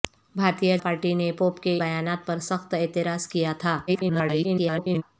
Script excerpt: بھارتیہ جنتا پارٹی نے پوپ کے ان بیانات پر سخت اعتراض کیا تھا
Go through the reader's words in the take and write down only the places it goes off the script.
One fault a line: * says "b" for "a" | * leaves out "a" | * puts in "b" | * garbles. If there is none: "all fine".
* leaves out "جنتا"
* leaves out "ان"
* garbles